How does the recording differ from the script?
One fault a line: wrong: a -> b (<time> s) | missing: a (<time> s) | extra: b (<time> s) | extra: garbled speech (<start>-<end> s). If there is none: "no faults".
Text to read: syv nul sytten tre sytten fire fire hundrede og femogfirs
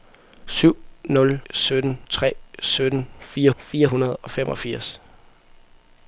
no faults